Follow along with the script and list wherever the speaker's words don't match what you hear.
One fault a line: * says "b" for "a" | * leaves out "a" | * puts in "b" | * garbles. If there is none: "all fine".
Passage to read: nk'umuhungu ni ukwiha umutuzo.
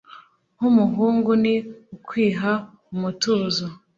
all fine